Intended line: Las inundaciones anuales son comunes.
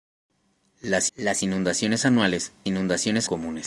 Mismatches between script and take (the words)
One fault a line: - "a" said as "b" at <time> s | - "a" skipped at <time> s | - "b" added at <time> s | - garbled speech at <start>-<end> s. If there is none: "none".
- "las" added at 1.2 s
- "son" said as "inundaciones" at 2.7 s